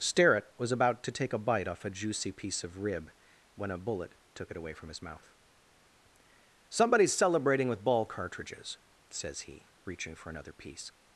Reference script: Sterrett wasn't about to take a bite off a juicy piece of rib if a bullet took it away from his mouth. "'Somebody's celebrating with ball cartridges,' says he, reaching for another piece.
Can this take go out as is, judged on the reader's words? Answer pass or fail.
fail